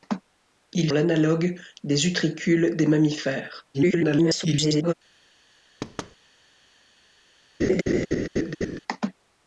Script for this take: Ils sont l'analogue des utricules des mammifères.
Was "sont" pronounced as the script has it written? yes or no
no